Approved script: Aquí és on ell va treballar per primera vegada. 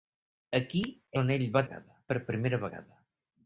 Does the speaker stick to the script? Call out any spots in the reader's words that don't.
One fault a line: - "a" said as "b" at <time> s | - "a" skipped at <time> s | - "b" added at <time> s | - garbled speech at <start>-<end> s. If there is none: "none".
- "és" skipped at 0.8 s
- "treballar" said as "vegada" at 1.7 s